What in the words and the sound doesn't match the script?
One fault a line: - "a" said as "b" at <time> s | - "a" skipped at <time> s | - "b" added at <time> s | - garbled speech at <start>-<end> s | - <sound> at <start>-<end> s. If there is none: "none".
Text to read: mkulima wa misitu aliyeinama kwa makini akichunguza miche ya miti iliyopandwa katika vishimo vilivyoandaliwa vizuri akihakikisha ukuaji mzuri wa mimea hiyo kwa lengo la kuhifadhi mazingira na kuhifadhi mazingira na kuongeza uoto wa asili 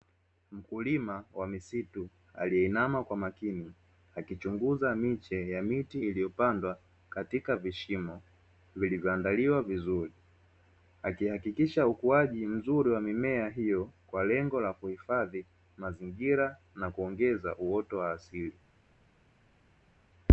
- "kuhifadhi mazingira na" skipped at 16.9 s